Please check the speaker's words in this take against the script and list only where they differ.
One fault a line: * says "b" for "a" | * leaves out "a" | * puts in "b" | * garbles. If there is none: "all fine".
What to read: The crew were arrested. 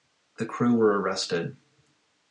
all fine